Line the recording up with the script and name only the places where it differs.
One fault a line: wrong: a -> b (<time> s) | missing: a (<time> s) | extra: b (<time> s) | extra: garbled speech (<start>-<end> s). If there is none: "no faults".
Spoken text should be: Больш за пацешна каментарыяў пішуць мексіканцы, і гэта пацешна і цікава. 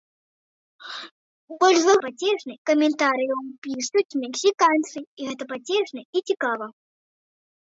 no faults